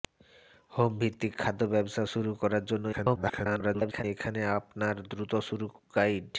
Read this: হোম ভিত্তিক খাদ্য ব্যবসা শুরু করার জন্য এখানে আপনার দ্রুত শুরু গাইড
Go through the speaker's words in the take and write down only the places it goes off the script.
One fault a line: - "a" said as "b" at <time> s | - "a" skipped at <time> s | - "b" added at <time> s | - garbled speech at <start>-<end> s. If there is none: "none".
- garbled speech at 2.9-4.0 s